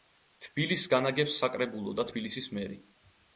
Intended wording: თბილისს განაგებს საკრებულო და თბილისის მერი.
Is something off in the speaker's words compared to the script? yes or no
no